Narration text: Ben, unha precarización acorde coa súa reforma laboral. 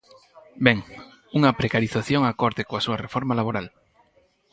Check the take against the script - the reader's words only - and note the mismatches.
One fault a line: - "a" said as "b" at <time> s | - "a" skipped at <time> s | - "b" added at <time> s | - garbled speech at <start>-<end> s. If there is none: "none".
none